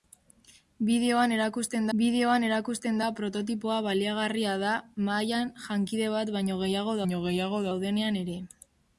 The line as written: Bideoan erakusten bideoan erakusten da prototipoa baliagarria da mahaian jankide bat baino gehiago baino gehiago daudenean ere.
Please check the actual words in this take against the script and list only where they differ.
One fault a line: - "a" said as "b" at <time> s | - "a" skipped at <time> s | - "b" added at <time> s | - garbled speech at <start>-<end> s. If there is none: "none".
none